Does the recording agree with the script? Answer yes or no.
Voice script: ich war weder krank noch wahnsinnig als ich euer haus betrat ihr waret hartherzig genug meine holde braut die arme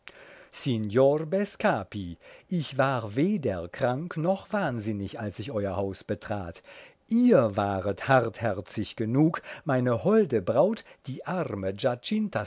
yes